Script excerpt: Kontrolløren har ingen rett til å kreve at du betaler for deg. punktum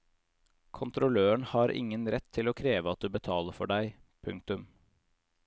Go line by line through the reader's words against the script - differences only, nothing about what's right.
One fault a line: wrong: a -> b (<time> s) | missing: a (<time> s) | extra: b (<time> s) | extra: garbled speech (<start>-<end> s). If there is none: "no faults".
no faults